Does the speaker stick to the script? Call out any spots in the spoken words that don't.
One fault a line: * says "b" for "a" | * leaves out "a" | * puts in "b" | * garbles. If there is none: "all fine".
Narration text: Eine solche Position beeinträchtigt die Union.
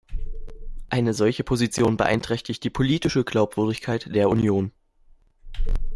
* puts in "politische Glaubwürdigkeit der"